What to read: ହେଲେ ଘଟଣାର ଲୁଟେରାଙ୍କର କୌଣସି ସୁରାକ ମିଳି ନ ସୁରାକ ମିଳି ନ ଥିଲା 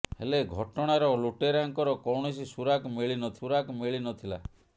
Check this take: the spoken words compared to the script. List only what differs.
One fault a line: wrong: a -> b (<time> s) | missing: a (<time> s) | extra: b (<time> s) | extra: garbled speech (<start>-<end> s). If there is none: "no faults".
no faults